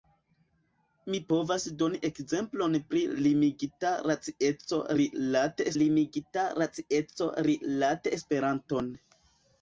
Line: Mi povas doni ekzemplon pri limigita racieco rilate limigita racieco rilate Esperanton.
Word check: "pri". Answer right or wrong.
right